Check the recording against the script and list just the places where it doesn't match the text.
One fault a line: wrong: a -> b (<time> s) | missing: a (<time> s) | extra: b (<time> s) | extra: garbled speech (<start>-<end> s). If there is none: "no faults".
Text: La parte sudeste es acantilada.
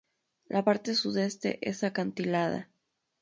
no faults